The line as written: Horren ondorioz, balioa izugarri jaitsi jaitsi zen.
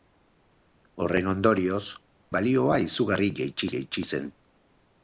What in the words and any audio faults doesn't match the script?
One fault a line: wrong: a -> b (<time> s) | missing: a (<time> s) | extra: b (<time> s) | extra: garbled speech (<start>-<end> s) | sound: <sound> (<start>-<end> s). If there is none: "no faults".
no faults